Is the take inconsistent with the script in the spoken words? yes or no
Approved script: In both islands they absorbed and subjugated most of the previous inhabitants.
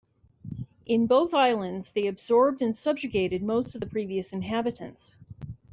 no